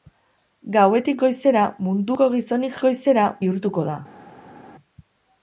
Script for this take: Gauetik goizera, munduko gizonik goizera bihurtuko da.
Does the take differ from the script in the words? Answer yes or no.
no